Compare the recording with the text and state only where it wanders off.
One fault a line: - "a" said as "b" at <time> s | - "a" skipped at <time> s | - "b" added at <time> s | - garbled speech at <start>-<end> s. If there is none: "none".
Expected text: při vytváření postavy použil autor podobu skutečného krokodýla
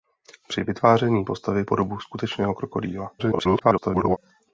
- "použil autor" skipped at 1.6 s
- garbled speech at 3.2-4.2 s